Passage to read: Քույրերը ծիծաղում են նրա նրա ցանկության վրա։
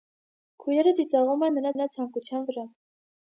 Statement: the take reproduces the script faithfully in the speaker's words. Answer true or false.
true